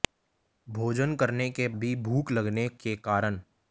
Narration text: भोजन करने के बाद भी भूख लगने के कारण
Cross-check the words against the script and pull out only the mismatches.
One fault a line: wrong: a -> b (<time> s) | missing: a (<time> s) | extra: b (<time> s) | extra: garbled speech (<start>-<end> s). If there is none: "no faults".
missing: बाद (1.7 s)